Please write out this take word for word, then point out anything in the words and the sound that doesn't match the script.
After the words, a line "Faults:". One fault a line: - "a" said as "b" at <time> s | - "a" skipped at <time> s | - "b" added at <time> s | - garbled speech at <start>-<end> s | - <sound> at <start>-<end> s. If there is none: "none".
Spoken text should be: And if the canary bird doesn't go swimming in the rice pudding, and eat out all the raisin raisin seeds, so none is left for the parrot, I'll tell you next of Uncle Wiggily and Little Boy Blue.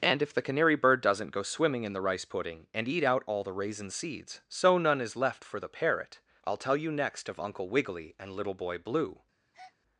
And if the canary bird doesn't go swimming in the rice pudding, and eat out all the raisin seeds, so none is left for the parrot, I'll tell you next of Uncle Wiggily and Little Boy Blue.
Faults:
- "raisin" skipped at 3.9 s
- breath at 9.5-9.8 s